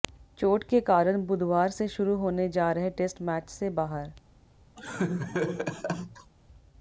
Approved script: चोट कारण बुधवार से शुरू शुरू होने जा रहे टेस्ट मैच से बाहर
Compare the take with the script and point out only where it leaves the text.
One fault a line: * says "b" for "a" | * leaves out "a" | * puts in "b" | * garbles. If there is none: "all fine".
* puts in "के"
* leaves out "शुरू"